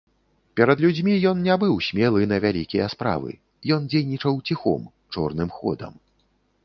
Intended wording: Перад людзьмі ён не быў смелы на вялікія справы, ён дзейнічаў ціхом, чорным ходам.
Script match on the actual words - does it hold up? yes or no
yes